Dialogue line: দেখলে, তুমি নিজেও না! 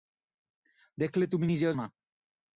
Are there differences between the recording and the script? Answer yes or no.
no